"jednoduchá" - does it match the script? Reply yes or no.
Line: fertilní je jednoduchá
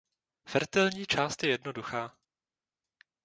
yes